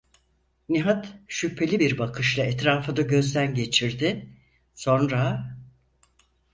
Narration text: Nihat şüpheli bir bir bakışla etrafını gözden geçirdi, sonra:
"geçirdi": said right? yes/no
yes